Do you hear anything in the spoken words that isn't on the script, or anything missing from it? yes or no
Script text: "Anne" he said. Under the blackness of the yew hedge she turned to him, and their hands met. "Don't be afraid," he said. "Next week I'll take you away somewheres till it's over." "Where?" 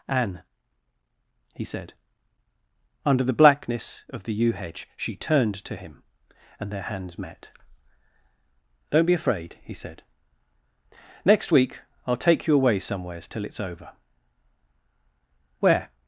no